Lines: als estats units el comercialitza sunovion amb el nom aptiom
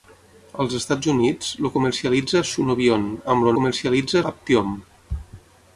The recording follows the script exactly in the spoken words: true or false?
false